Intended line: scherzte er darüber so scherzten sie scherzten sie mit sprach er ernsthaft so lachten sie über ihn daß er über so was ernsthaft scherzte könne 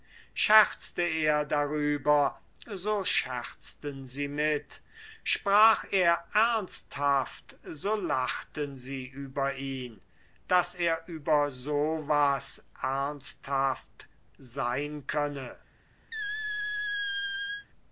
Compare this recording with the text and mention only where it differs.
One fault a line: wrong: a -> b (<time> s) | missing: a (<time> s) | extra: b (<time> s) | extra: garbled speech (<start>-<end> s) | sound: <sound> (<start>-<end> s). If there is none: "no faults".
missing: scherzten sie (4.3 s)
wrong: scherzte -> sein (14.4 s)
sound: squeak (16.1-17.7 s)